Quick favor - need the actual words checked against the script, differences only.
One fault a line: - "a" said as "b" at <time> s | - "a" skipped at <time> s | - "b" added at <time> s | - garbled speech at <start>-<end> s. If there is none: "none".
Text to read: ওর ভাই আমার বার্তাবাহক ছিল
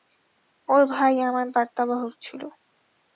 none